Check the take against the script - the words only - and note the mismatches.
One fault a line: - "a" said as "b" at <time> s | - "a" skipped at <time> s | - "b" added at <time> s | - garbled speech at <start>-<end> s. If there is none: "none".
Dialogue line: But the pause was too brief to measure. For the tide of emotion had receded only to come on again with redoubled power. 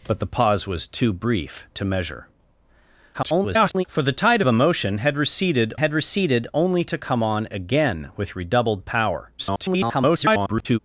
- garbled speech at 3.1-3.8 s
- "had receded" added at 5.8 s
- garbled speech at 9.4-10.8 s